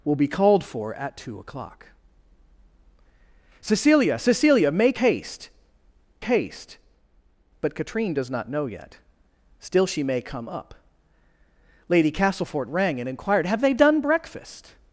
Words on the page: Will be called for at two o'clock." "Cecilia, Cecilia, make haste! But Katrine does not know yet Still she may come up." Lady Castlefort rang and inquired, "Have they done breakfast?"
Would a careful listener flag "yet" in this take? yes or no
no